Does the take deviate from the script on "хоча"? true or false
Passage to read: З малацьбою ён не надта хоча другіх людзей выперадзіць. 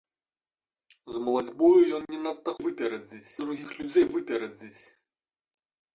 true